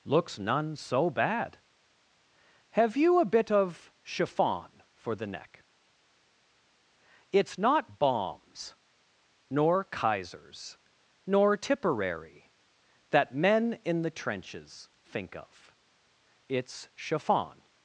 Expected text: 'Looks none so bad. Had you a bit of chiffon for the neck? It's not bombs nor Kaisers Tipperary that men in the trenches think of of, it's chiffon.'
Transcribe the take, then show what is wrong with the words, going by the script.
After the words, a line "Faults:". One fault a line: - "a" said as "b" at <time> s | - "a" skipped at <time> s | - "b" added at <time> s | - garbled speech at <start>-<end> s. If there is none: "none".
'Looks none so bad. Have you a bit of chiffon for the neck? It's not bombs nor Kaisers nor Tipperary that men in the trenches think of, it's chiffon.'
Faults:
- "Had" said as "Have" at 2.7 s
- "nor" added at 11.3 s
- "of" skipped at 15.7 s